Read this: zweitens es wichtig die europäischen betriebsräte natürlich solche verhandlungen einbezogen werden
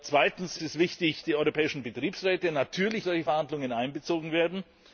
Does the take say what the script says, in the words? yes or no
yes